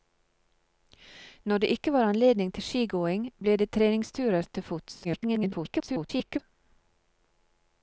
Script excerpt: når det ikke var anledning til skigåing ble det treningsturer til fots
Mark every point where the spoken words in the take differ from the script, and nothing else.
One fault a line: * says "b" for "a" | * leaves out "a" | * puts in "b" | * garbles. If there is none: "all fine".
* garbles